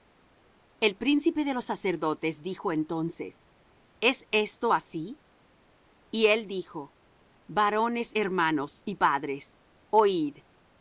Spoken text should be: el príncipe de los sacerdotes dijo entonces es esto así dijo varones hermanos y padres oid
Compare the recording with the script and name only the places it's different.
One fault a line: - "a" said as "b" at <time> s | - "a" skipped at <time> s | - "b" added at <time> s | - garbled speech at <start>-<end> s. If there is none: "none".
- "y él" added at 6.1 s